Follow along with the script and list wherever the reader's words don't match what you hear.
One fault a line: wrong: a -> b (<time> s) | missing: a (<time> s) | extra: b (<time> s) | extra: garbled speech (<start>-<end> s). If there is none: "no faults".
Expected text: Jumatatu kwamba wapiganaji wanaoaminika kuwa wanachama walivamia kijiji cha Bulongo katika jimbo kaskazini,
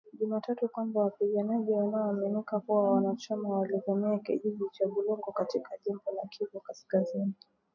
extra: la Kivu (6.1 s)